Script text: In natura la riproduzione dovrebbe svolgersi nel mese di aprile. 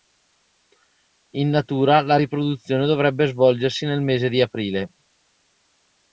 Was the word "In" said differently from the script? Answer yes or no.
no